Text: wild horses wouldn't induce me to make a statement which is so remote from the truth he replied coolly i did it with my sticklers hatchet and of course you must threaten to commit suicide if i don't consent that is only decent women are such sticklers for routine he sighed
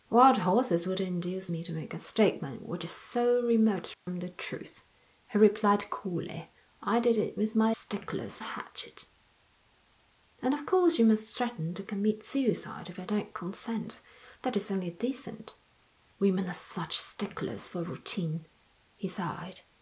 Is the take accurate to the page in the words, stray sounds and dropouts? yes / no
no